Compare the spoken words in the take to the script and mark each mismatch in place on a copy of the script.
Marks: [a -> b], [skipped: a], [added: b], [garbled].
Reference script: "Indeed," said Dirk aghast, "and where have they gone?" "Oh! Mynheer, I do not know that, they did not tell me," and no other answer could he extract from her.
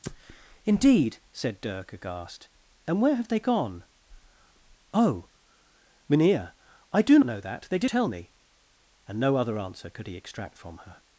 "Indeed," said Dirk aghast, "and where have they gone?" "Oh! Mynheer, I do [skipped: not] know that, they did [skipped: not] tell me," and no other answer could he extract from her.